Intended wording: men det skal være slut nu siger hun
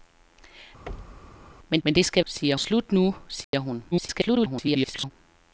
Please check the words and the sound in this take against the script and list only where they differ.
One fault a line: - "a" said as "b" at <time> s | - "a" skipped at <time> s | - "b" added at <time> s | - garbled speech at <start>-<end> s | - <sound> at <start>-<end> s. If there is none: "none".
- thud at 0.9-1.5 s
- "men" added at 1.8 s
- "være" said as "siger" at 2.2 s
- dropout at 3.4-3.5 s
- garbled speech at 3.9-5.1 s